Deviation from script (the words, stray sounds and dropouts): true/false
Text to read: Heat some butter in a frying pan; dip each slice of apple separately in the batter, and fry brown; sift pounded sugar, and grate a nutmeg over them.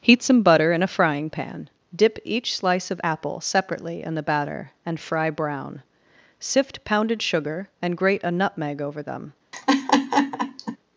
true